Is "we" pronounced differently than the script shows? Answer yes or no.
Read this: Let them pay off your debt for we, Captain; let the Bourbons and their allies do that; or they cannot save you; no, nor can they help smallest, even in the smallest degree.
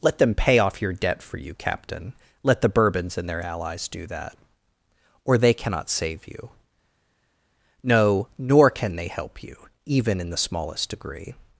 yes